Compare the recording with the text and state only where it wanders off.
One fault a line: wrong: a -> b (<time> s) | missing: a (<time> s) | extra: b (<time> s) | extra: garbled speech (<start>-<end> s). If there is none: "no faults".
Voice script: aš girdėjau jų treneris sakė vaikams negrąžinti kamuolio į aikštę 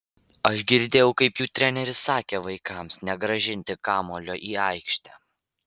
extra: kaip (1.2 s)